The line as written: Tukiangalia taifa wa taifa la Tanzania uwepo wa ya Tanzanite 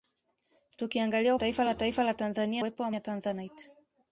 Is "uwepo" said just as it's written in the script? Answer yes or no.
yes